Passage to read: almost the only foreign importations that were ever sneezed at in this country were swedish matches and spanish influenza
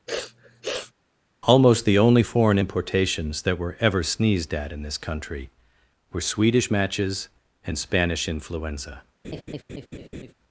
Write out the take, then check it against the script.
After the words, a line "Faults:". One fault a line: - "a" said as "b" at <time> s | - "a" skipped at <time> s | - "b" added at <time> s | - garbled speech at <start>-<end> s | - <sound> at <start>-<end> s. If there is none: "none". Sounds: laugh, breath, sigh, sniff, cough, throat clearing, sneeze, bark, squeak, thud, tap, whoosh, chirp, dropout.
almost the only foreign importations that were ever sneezed at in this country were swedish matches and spanish influenza
Faults:
- sniff at 0.1-0.9 s
- laugh at 9.2-10.3 s